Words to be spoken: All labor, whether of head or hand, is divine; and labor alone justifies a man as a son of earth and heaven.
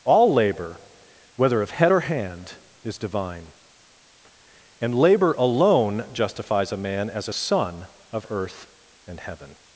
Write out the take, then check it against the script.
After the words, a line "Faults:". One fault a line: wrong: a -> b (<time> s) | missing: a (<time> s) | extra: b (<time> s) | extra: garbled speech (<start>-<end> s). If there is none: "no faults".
All labor, whether of head or hand, is divine; and labor alone justifies a man as a son of earth and heaven.
Faults:
no faults